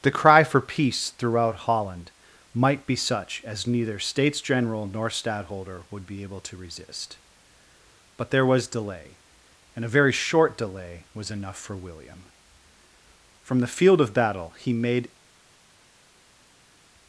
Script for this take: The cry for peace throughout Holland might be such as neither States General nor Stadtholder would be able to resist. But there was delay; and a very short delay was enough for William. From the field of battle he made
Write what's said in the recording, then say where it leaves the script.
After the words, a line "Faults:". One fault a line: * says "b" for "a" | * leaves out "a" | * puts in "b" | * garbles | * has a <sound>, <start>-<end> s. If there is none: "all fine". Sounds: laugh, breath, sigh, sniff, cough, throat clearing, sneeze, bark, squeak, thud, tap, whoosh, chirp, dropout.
The cry for peace throughout Holland might be such as neither States General nor Stadtholder would be able to resist. But there was delay; and a very short delay was enough for William. From the field of battle he made
Faults:
all fine